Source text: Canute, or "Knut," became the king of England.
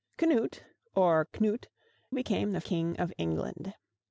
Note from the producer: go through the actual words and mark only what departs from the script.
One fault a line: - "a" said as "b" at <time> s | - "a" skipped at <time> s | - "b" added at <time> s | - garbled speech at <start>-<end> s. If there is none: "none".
none